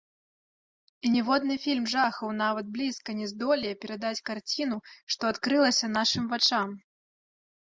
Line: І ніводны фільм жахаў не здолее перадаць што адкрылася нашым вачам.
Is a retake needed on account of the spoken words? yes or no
yes